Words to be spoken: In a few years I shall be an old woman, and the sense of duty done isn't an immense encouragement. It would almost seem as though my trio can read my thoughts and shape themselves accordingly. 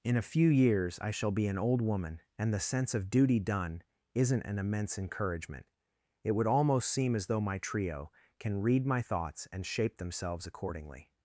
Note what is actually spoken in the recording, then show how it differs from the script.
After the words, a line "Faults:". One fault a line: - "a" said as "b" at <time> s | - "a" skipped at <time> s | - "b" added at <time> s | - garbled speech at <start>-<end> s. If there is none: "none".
In a few years I shall be an old woman, and the sense of duty done isn't an immense encouragement. It would almost seem as though my trio can read my thoughts and shape themselves accordingly.
Faults:
none